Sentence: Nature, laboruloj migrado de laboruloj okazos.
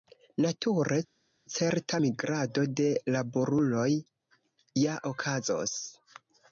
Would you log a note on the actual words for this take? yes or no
yes